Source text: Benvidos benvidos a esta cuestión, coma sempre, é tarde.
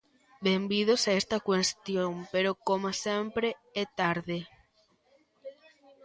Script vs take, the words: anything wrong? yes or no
yes